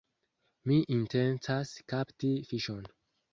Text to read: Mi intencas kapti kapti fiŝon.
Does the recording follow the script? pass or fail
fail